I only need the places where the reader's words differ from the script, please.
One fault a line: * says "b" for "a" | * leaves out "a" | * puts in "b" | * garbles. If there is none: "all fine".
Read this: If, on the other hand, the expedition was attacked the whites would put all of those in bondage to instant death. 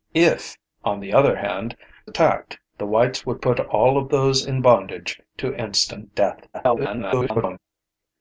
* leaves out "the expedition was"
* garbles